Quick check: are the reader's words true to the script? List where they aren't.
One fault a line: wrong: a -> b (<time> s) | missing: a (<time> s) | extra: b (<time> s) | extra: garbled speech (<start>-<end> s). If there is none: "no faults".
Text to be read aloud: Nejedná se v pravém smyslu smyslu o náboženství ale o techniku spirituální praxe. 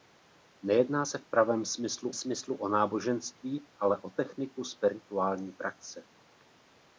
no faults